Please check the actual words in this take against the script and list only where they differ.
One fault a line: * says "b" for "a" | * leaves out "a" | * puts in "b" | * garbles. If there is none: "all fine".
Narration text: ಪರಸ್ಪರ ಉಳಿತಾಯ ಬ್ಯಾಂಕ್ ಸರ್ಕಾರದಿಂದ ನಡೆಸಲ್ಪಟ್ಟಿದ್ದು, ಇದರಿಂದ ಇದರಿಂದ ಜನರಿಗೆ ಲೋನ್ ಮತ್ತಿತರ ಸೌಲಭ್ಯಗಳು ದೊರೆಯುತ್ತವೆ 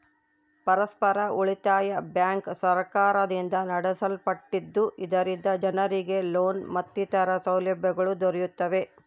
* leaves out "ಇದರಿಂದ"